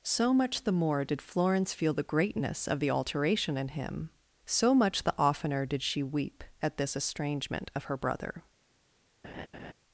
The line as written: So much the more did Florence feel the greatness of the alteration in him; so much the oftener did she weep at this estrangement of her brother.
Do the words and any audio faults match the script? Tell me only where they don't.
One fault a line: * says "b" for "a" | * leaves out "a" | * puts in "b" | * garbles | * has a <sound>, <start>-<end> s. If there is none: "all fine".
* has a laugh, 9.2-9.7 s